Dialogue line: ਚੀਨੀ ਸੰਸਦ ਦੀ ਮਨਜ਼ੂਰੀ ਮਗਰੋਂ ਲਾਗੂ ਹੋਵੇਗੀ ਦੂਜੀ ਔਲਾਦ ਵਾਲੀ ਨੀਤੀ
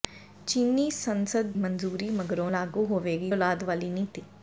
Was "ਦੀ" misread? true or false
true